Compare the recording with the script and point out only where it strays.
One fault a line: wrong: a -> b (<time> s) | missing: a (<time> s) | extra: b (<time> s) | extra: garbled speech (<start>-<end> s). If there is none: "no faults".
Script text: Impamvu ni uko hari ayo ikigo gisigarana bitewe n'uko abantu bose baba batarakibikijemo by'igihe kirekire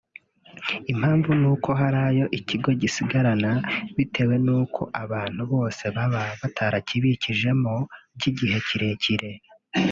no faults